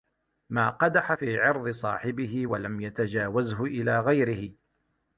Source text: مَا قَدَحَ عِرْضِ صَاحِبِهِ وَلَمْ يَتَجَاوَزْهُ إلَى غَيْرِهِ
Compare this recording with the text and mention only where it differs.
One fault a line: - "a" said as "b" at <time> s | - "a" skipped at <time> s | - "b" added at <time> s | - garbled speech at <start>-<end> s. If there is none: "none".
- "فِي" added at 1.1 s